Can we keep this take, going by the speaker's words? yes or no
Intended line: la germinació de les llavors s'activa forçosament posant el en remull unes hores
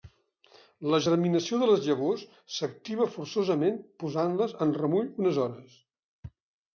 no